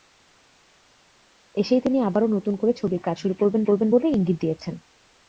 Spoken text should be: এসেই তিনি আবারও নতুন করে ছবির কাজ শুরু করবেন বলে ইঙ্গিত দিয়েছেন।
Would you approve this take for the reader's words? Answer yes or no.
no